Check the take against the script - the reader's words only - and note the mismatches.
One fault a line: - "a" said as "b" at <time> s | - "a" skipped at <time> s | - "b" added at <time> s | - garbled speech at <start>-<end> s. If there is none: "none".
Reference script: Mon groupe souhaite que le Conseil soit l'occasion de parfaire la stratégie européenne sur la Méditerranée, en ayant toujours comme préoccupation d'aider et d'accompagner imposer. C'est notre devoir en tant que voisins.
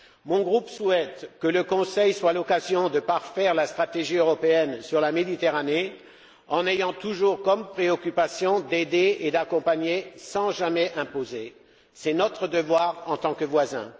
- "sans jamais" added at 10.2 s